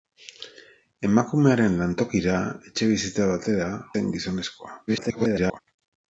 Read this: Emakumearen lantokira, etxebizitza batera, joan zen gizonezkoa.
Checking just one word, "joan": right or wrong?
wrong